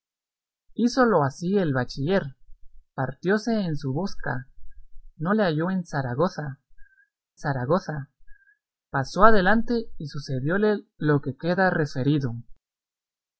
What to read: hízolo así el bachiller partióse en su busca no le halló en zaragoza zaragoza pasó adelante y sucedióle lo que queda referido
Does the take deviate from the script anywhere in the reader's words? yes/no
no